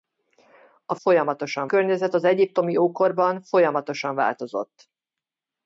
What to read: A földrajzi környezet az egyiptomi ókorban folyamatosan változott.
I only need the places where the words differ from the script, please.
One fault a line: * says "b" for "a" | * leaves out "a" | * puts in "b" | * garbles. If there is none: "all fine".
* says "folyamatosan" for "földrajzi"